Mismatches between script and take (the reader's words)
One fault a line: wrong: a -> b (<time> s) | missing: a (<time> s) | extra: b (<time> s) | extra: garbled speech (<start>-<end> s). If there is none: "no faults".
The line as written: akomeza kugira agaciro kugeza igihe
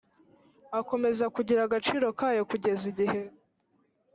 extra: kayo (2.2 s)